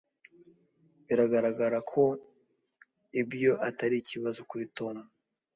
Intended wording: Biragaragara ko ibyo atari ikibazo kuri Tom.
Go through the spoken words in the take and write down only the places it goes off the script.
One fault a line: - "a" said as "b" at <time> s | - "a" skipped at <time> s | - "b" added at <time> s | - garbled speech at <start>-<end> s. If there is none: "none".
none